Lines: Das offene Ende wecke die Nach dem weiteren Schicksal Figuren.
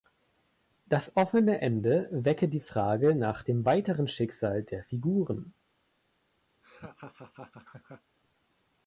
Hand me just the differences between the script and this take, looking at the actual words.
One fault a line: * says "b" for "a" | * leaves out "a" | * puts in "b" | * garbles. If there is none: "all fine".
* puts in "Frage"
* puts in "der"